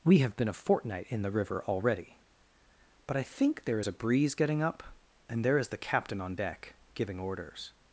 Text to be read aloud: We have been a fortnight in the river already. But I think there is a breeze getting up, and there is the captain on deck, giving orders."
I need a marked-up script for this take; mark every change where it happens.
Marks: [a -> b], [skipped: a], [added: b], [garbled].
We have been a fortnight in the river already. But I think there is a breeze getting up, and there is the captain on deck, giving orders."